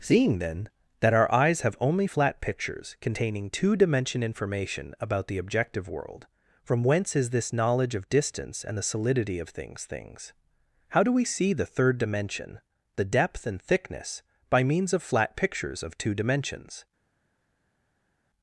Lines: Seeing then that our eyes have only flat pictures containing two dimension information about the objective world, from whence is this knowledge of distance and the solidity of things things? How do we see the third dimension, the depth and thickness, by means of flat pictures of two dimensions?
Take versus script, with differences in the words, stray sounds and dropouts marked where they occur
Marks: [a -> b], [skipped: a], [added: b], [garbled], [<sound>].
Seeing then that our eyes have only flat pictures containing two dimension information about the objective world, from whence is this knowledge of distance and the solidity of things things? How do we see the third dimension, the depth and thickness, by means of flat pictures of two dimensions?